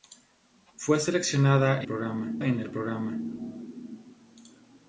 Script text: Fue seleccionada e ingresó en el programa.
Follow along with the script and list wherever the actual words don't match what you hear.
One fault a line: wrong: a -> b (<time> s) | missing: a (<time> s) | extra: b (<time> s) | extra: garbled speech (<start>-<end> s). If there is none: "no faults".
wrong: ingresó -> programa (1.9 s)